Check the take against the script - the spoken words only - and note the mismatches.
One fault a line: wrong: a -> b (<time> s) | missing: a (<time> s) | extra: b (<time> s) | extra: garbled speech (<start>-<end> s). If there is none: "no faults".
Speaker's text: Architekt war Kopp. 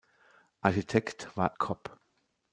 no faults